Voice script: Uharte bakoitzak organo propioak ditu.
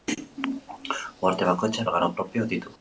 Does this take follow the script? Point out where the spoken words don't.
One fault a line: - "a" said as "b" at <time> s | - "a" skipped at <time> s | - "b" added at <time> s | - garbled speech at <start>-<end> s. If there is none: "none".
none